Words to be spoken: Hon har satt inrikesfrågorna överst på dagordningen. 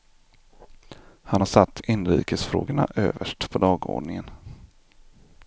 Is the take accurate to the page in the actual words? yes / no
no